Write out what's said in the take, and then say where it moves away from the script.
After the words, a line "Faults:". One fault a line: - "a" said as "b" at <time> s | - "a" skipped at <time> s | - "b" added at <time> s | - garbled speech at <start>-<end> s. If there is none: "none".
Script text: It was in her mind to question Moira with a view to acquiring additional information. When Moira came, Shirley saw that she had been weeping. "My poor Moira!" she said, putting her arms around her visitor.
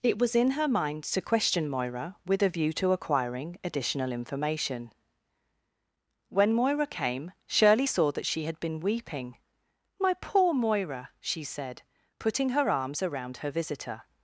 It was in her mind to question Moira with a view to acquiring additional information. When Moira came, Shirley saw that she had been weeping. "My poor Moira!" she said, putting her arms around her visitor.
Faults:
none